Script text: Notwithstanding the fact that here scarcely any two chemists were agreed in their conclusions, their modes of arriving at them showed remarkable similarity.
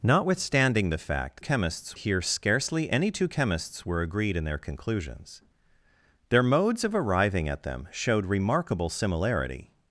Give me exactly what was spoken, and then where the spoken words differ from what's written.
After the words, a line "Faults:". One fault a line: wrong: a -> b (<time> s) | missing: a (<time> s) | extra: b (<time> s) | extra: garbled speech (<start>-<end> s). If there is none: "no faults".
Notwithstanding the fact chemists here scarcely any two chemists were agreed in their conclusions, their modes of arriving at them showed remarkable similarity.
Faults:
wrong: that -> chemists (1.4 s)